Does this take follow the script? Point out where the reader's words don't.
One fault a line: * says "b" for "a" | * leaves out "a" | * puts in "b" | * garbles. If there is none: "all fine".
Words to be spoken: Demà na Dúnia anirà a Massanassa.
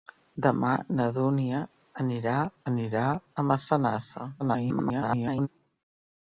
* puts in "anirà"
* garbles